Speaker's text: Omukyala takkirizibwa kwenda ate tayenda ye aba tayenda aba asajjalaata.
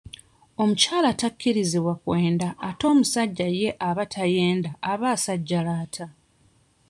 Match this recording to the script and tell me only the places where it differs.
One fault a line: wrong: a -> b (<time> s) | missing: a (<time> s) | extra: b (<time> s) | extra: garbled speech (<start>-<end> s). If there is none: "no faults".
wrong: tayenda -> omusajja (2.9 s)